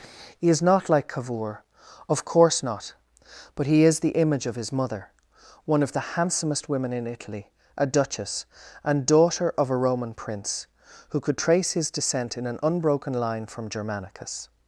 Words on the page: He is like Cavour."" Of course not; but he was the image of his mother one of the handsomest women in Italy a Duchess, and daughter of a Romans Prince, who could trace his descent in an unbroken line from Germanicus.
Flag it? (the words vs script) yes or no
yes